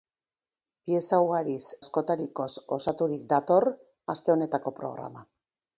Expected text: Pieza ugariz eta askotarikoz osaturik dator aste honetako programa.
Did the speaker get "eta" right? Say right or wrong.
wrong